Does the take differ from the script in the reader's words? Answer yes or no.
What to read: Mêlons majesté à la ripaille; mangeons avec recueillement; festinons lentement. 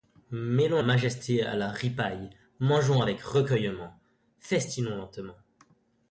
no